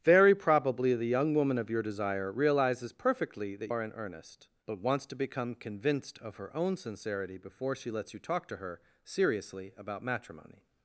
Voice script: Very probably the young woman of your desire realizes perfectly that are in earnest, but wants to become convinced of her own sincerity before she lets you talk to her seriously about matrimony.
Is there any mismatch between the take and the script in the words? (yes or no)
no